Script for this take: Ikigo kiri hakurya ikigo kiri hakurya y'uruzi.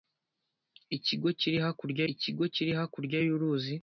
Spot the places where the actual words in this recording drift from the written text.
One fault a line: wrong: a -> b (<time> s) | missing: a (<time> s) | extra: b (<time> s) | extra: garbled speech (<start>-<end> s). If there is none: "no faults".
no faults